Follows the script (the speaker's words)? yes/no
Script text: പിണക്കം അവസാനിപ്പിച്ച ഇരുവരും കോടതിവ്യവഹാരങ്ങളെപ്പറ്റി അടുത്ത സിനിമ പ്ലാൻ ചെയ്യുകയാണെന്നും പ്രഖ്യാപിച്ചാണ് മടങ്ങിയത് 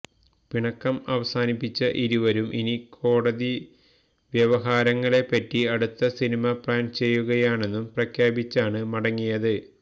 no